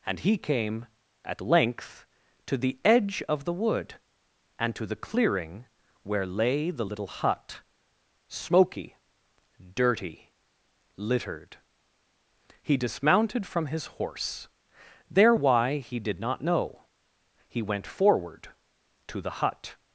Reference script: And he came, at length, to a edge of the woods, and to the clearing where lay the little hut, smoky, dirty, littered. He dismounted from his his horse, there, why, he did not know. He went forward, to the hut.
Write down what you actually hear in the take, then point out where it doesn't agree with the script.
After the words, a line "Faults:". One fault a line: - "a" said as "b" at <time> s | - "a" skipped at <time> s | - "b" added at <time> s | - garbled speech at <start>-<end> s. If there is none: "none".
And he came, at length, to the edge of the wood, and to the clearing where lay the little hut, smoky, dirty, littered. He dismounted from his horse, there, why, he did not know. He went forward, to the hut.
Faults:
- "a" said as "the" at 2.6 s
- "woods" said as "wood" at 3.5 s
- "his" skipped at 13.9 s